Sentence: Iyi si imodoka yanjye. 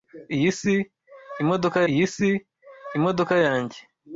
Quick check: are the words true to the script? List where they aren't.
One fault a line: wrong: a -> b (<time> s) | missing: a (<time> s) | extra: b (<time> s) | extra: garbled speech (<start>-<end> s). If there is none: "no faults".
extra: iyi si imodoka (1.9 s)